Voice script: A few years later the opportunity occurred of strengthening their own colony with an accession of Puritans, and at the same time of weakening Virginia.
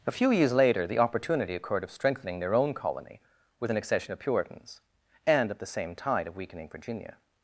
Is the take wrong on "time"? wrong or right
wrong